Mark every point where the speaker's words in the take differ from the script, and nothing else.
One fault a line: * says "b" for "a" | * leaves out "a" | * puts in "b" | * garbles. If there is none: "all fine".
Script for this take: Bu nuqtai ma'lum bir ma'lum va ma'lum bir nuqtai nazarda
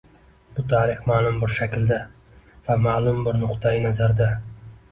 * says "tarix" for "nuqtai"
* says "shaklda" for "ma'lum"